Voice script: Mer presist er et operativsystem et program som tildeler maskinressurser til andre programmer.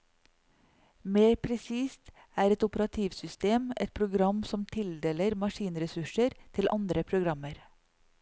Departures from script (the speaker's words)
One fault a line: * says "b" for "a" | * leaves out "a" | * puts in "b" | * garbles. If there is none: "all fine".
all fine